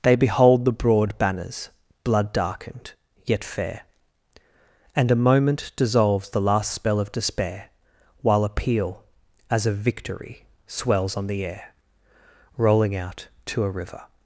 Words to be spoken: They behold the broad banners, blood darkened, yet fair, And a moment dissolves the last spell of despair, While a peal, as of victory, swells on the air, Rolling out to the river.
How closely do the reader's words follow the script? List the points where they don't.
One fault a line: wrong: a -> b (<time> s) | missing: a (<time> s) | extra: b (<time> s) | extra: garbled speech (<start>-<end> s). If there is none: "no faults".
wrong: the -> a (13.6 s)